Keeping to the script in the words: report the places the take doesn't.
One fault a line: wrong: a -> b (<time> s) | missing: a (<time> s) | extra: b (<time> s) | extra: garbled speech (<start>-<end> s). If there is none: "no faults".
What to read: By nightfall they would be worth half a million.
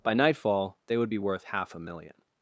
no faults